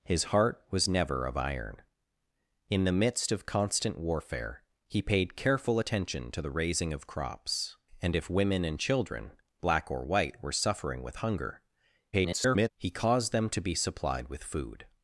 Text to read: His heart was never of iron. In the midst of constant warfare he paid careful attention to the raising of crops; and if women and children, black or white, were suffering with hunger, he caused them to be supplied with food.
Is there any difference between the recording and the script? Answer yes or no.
yes